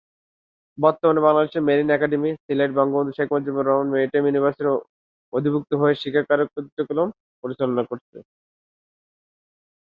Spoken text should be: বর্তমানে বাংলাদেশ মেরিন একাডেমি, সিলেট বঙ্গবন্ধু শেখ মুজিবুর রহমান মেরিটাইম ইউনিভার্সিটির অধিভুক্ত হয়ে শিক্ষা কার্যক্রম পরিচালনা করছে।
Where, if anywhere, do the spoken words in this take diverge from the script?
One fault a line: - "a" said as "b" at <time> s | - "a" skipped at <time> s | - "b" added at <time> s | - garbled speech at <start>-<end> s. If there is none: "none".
none